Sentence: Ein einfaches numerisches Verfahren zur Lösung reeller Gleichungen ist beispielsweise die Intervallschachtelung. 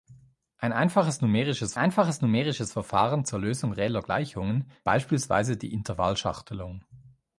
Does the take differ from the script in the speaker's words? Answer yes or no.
yes